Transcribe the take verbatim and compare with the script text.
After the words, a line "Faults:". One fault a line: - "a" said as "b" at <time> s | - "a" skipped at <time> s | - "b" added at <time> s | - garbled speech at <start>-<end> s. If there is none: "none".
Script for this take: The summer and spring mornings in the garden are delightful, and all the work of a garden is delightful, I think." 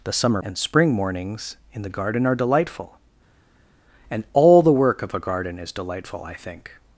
The summer and spring mornings in the garden are delightful, and all the work of a garden is delightful, I think."
Faults:
none